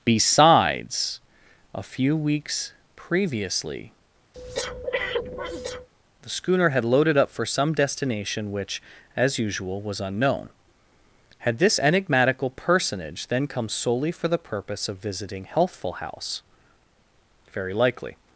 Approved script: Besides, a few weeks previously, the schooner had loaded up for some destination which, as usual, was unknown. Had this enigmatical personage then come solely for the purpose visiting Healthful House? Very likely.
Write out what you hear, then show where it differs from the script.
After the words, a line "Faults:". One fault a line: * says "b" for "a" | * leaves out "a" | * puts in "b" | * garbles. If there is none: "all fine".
Besides, a few weeks previously, the schooner had loaded up for some destination which, as usual, was unknown. Had this enigmatical personage then come solely for the purpose of visiting Healthful House? Very likely.
Faults:
* puts in "of"